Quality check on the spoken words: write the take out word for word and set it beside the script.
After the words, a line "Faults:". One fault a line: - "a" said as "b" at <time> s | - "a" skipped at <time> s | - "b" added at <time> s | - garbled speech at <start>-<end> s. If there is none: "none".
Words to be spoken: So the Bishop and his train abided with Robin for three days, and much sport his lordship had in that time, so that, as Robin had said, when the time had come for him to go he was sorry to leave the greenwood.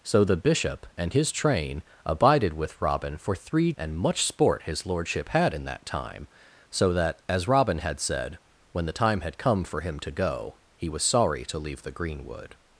So the Bishop and his train abided with Robin for three and much sport his lordship had in that time, so that, as Robin had said, when the time had come for him to go he was sorry to leave the greenwood.
Faults:
- "days" skipped at 3.7 s